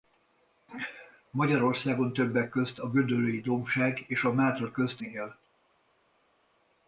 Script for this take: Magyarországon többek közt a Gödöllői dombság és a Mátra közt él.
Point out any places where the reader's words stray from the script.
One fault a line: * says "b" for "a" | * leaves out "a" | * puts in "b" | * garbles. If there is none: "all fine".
all fine